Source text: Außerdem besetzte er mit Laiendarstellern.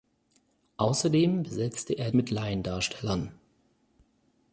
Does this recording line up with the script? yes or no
yes